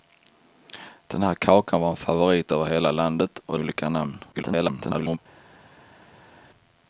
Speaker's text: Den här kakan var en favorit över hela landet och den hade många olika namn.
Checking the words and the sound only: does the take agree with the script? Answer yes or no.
no